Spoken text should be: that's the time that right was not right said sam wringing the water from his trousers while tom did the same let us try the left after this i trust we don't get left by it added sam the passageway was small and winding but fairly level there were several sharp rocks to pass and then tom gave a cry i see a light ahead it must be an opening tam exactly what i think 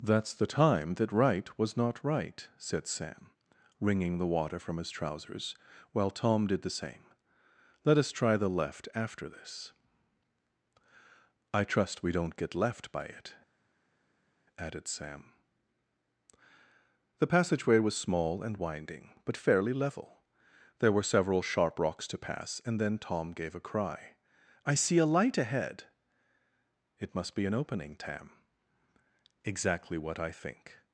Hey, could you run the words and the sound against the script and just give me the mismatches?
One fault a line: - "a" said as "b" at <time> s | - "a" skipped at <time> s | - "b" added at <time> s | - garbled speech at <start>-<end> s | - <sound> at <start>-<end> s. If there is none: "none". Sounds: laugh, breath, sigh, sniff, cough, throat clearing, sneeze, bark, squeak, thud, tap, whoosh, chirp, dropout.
none